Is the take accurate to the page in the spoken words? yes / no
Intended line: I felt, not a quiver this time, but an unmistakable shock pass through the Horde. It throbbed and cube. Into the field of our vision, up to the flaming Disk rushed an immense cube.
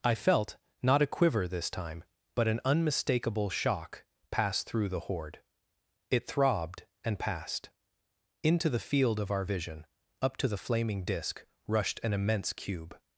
no